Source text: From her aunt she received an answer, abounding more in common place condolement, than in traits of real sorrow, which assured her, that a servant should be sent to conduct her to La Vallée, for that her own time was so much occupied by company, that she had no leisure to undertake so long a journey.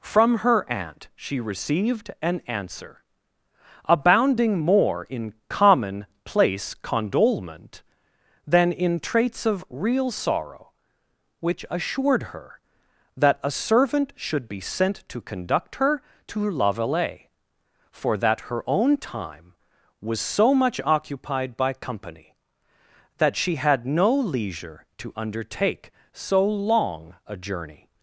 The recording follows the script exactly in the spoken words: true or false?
true